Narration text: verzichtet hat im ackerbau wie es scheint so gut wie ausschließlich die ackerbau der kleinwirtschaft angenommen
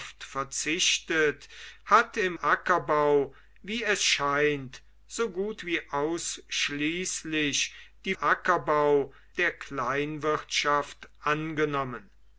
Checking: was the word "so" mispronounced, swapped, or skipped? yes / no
no